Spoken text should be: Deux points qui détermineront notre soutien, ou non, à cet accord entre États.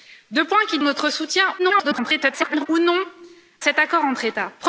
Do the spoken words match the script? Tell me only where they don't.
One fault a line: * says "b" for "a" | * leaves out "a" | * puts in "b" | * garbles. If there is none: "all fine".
* leaves out "détermineront"
* garbles
* leaves out "à"